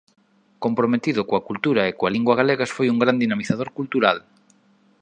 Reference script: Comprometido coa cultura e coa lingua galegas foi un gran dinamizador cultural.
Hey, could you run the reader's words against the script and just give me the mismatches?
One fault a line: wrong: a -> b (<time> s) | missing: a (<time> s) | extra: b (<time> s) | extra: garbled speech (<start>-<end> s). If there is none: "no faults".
no faults